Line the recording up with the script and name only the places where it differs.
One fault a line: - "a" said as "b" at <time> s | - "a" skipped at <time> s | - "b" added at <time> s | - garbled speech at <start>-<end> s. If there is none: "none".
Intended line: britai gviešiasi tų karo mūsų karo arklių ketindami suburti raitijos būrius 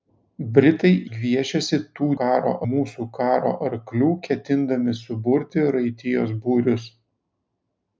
none